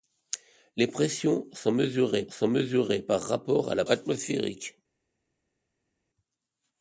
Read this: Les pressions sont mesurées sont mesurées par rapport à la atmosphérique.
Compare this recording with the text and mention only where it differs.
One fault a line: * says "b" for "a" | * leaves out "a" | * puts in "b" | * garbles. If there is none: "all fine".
all fine